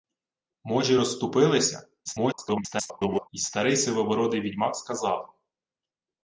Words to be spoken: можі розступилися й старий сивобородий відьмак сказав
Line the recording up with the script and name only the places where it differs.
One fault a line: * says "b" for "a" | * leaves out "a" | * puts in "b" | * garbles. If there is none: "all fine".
* garbles